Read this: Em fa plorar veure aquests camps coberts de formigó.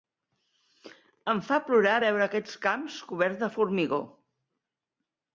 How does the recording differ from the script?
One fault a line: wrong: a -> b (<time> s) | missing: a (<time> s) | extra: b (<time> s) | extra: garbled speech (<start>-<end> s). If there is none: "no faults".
no faults